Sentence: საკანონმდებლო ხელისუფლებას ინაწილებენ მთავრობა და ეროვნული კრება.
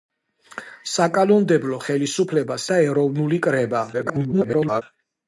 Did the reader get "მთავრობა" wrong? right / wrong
wrong